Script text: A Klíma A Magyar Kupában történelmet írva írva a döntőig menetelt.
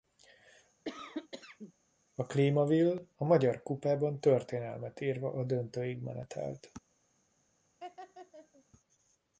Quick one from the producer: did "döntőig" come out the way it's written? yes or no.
yes